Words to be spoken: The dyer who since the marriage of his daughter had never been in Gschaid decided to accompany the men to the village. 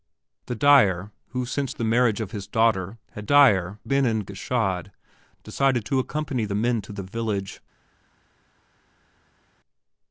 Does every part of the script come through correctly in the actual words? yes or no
no